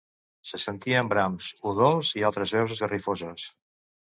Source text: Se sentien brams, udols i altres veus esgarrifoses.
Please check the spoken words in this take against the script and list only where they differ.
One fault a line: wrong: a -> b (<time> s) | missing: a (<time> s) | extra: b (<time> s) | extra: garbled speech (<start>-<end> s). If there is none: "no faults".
no faults